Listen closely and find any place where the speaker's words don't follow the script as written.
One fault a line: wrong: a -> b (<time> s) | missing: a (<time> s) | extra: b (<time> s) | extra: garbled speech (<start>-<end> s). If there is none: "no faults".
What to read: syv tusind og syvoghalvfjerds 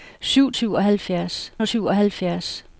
wrong: tusind -> syvoghalvfjerds (0.5 s)